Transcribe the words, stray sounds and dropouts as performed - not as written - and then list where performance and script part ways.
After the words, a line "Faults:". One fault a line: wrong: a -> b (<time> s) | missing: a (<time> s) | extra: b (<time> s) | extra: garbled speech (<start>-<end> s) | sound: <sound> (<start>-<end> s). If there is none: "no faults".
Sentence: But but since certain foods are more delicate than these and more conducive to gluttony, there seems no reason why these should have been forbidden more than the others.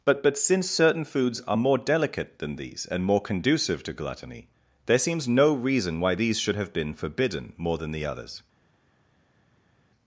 But but since certain foods are more delicate than these and more conducive to gluttony, there seems no reason why these should have been forbidden more than the others.
Faults:
no faults